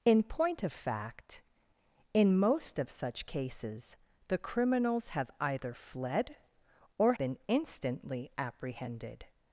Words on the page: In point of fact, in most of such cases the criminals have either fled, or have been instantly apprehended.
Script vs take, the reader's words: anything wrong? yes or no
yes